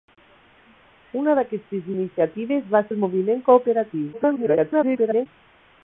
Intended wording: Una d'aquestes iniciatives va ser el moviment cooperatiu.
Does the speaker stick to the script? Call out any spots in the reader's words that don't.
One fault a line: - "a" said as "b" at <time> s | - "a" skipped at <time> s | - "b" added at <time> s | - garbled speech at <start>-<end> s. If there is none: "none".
- "ser" skipped at 2.8 s
- garbled speech at 4.1-5.3 s